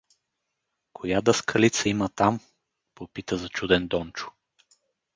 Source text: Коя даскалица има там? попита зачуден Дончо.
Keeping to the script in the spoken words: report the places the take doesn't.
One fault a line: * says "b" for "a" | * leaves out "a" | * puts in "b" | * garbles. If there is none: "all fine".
all fine